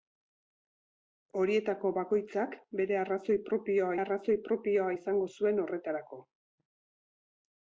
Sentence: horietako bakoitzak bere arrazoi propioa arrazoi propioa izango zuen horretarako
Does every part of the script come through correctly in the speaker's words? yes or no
yes